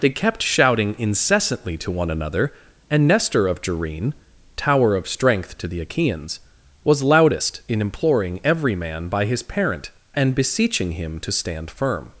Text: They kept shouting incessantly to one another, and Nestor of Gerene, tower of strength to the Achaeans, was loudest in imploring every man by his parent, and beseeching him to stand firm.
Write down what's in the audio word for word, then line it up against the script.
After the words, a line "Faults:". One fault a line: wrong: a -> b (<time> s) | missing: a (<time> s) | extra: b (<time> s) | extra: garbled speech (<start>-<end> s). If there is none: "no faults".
They kept shouting incessantly to one another, and Nestor of Gerene, tower of strength to the Achaeans, was loudest in imploring every man by his parent, and beseeching him to stand firm.
Faults:
no faults